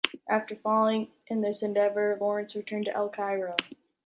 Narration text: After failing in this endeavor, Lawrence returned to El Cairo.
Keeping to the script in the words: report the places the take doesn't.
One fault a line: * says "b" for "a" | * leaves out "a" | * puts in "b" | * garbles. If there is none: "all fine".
all fine